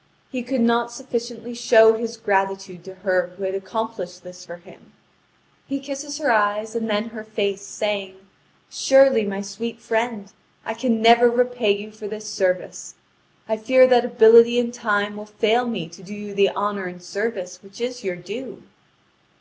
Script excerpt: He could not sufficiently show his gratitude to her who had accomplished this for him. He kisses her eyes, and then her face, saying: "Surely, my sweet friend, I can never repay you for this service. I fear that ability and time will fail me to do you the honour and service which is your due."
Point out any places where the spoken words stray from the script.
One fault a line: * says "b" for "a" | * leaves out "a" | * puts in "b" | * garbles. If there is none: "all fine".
all fine